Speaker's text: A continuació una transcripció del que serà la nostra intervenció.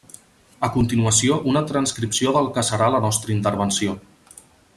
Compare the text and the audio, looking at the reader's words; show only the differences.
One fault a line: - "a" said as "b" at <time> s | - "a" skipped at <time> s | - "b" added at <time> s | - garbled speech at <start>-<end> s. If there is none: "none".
none